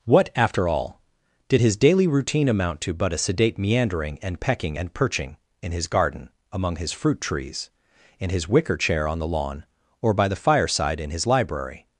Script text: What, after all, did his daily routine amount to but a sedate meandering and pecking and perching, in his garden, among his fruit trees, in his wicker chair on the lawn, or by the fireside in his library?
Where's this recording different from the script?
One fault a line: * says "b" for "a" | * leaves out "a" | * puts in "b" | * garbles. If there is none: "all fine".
all fine